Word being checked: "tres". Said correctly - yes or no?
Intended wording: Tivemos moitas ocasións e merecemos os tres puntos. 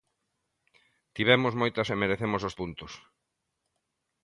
no